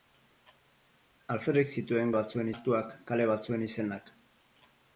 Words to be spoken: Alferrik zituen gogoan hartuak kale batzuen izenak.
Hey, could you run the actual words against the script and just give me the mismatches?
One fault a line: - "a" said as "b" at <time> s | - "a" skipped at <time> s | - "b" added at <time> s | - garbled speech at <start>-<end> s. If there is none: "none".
- "gogoan" said as "batzuen" at 2.2 s